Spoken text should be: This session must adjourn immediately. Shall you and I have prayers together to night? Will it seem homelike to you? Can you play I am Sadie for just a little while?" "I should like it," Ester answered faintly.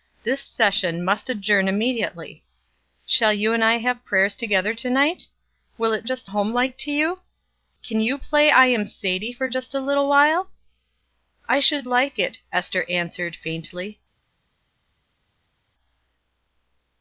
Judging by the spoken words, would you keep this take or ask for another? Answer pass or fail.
fail